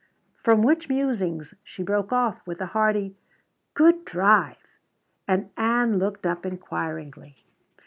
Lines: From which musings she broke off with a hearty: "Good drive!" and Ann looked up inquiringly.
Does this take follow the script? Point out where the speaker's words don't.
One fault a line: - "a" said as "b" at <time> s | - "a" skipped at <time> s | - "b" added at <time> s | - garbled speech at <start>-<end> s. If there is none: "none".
none